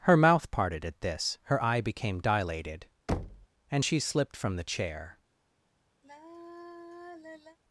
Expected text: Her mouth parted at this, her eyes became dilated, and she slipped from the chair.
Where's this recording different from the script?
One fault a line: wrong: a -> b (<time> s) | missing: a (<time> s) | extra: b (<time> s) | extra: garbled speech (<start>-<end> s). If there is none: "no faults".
wrong: eyes -> eye (1.6 s)